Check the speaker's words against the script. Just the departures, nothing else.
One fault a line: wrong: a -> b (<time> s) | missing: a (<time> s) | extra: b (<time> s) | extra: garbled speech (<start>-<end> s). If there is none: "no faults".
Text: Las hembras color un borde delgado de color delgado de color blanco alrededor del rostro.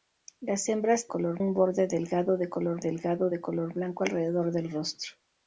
no faults